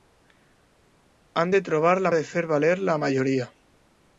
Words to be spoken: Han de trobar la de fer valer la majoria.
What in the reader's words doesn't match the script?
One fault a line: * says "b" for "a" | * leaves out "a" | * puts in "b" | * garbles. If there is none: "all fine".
all fine